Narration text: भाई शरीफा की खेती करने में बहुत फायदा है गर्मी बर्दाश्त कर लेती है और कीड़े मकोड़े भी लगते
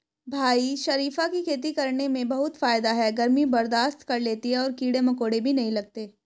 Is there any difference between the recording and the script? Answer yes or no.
yes